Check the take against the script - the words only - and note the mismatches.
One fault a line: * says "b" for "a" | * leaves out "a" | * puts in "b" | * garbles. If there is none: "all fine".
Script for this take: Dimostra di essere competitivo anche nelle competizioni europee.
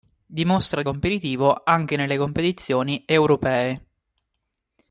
* leaves out "essere"